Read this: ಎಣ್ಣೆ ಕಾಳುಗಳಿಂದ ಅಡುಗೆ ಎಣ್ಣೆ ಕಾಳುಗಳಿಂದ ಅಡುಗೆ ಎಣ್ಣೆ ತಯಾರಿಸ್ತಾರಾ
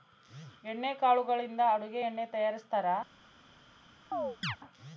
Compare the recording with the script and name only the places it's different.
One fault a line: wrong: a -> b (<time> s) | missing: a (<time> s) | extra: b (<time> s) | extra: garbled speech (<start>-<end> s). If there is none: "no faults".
missing: ಕಾಳುಗಳಿಂದ ಅಡುಗೆ ಎಣ್ಣೆ (2.3 s)